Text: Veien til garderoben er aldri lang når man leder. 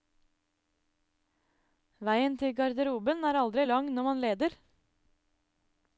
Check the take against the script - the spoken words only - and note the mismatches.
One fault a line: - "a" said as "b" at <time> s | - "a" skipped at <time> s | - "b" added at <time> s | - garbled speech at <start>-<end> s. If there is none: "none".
none